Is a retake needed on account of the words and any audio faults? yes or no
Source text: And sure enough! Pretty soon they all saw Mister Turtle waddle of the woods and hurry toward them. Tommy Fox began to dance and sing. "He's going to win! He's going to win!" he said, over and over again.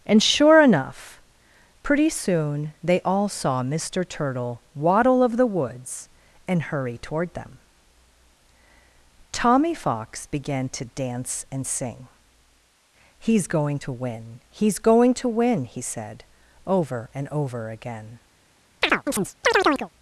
yes